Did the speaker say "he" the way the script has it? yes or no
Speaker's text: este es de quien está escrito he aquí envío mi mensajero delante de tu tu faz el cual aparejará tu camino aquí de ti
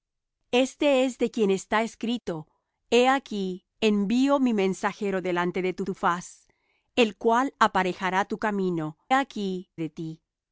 yes